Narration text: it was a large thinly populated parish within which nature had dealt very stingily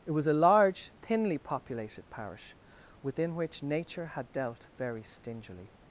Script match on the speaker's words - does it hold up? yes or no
yes